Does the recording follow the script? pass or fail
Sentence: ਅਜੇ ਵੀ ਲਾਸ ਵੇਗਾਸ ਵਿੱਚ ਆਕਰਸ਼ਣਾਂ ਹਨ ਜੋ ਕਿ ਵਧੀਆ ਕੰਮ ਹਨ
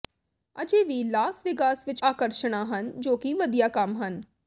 pass